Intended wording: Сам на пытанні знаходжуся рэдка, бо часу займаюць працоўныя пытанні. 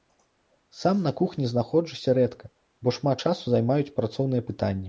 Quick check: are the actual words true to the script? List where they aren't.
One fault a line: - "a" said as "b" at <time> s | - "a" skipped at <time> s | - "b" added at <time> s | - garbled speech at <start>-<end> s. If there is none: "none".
- "пытанні" said as "кухні" at 1.1 s
- "шмат" added at 3.0 s